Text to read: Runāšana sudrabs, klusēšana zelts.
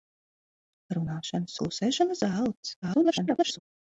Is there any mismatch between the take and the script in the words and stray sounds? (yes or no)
yes